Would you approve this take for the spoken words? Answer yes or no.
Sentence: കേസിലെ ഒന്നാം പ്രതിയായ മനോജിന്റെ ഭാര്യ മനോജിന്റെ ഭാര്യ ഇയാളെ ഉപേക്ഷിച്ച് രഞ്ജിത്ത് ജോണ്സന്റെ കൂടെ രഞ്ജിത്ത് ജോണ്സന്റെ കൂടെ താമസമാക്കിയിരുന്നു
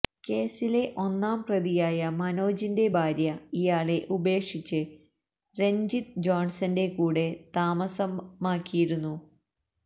no